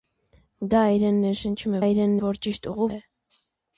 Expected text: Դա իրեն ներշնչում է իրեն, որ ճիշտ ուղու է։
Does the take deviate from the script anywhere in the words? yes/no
no